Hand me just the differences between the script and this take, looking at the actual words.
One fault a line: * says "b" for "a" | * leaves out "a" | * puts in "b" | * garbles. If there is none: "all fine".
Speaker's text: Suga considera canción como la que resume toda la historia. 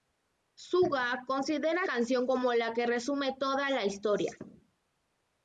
all fine